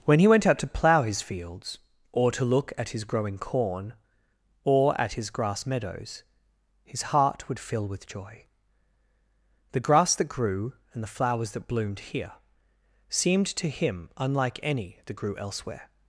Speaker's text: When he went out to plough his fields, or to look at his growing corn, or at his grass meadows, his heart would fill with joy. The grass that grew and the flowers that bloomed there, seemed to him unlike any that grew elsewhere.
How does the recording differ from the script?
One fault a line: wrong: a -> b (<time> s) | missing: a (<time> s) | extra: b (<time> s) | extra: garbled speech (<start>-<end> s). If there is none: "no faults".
wrong: there -> here (12.0 s)